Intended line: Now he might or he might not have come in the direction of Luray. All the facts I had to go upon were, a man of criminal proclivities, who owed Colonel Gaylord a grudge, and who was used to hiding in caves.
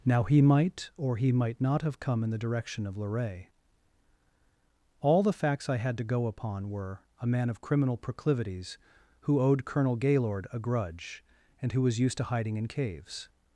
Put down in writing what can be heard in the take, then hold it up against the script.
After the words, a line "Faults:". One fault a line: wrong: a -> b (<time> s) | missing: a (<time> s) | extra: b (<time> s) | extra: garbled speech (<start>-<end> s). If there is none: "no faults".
Now he might or he might not have come in the direction of Luray. All the facts I had to go upon were, a man of criminal proclivities, who owed Colonel Gaylord a grudge, and who was used to hiding in caves.
Faults:
no faults